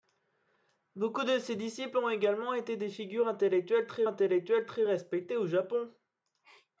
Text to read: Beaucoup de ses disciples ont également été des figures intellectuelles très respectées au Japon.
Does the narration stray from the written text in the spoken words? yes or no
yes